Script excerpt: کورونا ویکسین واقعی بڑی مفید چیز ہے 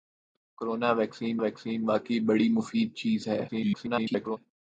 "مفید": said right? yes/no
yes